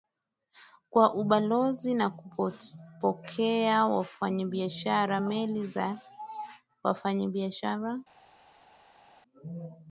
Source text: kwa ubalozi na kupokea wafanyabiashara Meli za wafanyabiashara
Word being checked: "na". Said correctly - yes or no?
yes